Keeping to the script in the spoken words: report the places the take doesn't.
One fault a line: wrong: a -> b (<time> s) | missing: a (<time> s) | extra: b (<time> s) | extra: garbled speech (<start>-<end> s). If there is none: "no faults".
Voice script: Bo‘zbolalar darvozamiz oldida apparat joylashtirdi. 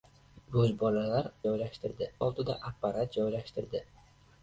wrong: darvozamiz -> joylashtirdi (1.5 s)